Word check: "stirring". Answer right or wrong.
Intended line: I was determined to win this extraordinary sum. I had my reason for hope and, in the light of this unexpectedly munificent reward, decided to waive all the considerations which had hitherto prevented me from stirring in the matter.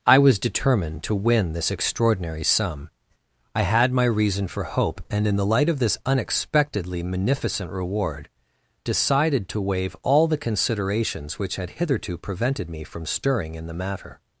right